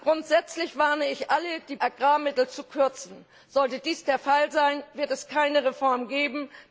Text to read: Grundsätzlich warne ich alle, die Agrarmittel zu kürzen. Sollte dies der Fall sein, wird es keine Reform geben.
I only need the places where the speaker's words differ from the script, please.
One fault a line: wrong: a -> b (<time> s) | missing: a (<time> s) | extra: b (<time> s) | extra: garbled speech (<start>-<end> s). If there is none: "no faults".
no faults